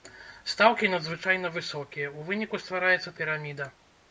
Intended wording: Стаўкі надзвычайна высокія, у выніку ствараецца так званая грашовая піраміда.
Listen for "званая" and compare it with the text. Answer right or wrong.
wrong